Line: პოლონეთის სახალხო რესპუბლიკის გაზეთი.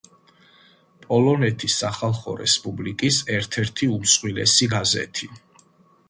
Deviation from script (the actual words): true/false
true